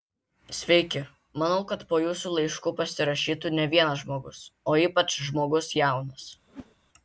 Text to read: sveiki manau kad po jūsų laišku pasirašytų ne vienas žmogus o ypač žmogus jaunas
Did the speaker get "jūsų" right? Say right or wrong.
right